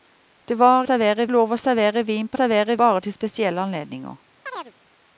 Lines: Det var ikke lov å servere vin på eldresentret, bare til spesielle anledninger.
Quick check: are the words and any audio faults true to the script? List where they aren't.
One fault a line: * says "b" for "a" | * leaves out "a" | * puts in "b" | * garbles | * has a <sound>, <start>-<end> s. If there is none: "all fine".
* says "servere" for "ikke"
* says "servere" for "eldresentret"
* has a chirp, 4.5-4.7 s